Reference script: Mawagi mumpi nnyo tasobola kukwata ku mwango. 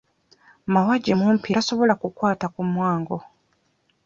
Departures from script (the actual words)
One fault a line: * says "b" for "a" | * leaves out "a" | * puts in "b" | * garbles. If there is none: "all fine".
* leaves out "nnyo"